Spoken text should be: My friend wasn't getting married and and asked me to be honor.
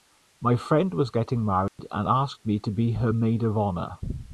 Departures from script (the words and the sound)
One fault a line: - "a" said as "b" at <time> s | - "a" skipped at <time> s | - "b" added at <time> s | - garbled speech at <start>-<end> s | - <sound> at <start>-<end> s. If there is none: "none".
- "wasn't" said as "was" at 0.9 s
- dropout at 1.7-1.8 s
- "and" skipped at 2.1 s
- "her maid of" added at 2.9 s